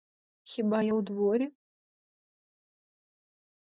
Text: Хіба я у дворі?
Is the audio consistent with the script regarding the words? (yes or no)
yes